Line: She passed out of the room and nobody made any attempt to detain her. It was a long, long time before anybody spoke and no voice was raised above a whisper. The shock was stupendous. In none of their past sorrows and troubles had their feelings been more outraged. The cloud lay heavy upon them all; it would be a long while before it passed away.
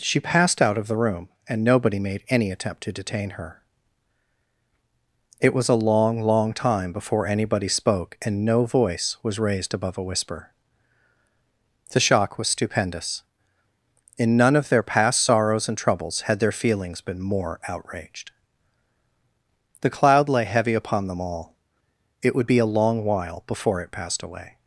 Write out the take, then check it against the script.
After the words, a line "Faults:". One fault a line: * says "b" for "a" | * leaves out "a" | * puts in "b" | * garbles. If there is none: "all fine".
She passed out of the room and nobody made any attempt to detain her. It was a long, long time before anybody spoke and no voice was raised above a whisper. The shock was stupendous. In none of their past sorrows and troubles had their feelings been more outraged. The cloud lay heavy upon them all; it would be a long while before it passed away.
Faults:
all fine